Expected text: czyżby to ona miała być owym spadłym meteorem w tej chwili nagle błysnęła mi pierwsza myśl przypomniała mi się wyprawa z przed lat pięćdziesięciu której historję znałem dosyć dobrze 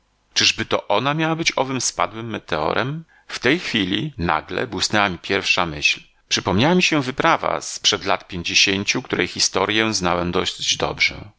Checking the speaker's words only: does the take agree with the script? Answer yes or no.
yes